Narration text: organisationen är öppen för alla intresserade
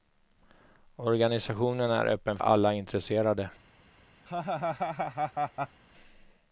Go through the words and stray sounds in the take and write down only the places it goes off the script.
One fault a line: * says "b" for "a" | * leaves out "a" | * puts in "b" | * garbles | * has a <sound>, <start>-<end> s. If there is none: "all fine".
* leaves out "för"
* has a laugh, 4.3-5.8 s